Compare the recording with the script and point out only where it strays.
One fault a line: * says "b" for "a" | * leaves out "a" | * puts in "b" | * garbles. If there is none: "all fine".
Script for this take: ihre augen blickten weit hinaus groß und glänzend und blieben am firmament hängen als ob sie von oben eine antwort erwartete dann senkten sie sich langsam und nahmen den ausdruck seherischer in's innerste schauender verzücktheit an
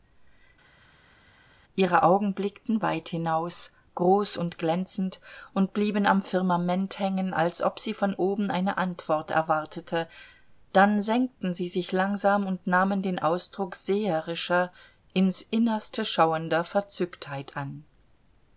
all fine